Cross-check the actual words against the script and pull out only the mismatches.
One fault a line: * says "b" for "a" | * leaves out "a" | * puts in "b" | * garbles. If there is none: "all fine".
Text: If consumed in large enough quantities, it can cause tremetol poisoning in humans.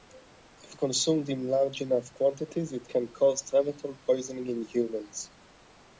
all fine